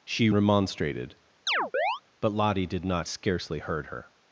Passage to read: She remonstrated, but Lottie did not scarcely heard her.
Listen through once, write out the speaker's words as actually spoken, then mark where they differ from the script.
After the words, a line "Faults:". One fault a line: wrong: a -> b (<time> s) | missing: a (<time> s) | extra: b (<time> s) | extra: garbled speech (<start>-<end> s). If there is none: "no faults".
She remonstrated, but Lottie did not scarcely heard her.
Faults:
no faults